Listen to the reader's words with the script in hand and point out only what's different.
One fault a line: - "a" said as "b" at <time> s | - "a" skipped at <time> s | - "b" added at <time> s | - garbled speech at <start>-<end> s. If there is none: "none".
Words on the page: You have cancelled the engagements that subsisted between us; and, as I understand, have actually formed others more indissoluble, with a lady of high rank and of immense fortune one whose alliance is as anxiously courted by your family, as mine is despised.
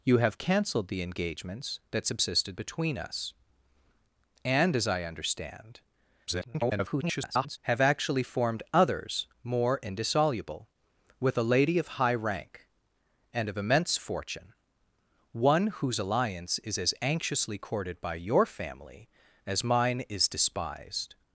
- garbled speech at 6.3-7.6 s